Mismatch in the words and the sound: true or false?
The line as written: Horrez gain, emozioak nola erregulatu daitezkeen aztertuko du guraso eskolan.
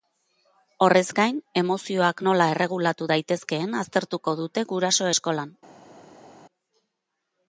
true